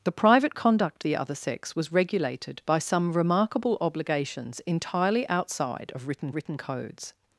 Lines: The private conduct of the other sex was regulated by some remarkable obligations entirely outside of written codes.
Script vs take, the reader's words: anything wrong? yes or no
yes